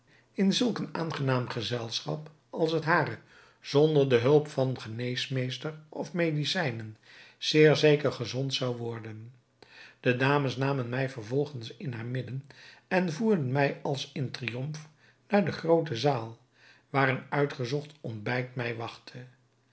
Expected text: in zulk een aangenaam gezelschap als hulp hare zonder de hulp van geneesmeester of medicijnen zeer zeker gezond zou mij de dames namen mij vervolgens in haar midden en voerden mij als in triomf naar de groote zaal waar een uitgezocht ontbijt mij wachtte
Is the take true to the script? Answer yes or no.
no